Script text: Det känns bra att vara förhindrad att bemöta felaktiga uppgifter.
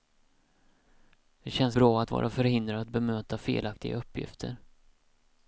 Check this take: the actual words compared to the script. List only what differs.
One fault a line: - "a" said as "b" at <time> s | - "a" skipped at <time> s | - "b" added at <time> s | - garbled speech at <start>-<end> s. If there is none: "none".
none